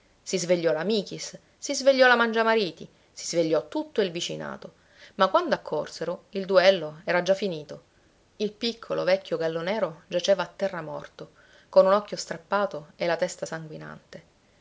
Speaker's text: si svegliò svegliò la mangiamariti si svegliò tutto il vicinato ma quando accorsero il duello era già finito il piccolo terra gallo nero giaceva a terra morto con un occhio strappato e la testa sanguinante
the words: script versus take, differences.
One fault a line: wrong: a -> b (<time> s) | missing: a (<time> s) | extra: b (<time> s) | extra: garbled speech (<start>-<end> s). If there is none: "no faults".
extra: la michis si (0.7 s)
wrong: terra -> vecchio (9.0 s)